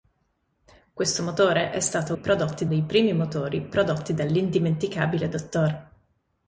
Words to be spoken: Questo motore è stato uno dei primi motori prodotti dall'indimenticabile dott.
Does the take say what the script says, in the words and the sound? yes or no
no